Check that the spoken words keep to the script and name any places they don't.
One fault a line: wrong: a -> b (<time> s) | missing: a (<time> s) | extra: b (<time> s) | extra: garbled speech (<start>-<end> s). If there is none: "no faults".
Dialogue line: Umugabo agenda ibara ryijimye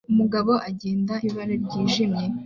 no faults